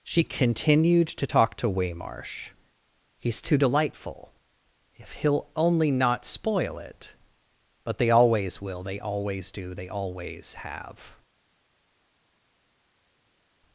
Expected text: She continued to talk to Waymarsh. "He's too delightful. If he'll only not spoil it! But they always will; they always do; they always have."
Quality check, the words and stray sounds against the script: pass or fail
pass